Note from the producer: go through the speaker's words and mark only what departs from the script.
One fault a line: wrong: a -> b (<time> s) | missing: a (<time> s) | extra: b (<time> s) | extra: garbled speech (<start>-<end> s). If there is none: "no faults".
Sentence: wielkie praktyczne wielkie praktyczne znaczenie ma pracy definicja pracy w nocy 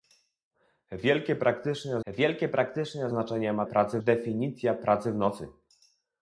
no faults